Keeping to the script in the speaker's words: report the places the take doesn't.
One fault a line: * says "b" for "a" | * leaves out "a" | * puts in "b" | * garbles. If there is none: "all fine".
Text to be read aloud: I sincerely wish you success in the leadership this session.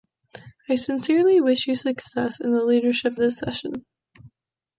all fine